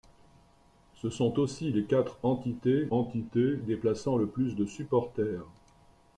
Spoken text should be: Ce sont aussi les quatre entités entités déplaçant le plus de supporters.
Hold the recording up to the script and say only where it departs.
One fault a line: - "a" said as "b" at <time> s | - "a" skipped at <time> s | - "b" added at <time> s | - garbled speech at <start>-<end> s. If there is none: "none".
none